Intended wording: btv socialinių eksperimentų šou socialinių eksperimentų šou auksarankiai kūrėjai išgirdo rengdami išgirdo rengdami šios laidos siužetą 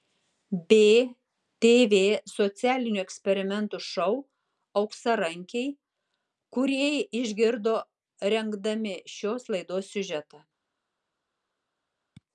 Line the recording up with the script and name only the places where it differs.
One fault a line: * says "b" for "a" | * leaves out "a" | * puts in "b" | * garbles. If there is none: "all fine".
* leaves out "socialinių eksperimentų šou"
* leaves out "išgirdo rengdami"